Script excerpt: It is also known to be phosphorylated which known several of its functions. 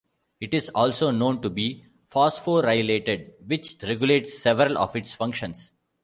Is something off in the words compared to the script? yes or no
yes